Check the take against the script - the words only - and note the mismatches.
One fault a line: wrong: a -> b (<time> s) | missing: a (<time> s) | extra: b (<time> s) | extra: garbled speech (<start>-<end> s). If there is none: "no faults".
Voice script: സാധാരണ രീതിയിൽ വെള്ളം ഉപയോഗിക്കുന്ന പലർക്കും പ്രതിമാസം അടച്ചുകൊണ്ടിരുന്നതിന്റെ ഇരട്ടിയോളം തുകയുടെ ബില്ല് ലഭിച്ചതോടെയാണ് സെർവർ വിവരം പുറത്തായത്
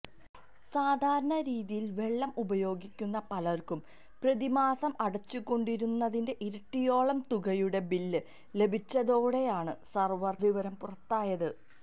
no faults